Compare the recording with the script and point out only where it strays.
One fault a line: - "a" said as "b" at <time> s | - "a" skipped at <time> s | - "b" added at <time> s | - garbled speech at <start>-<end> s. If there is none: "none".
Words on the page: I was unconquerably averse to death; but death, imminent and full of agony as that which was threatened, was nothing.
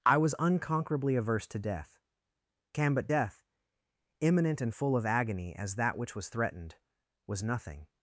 - "can" added at 2.7 s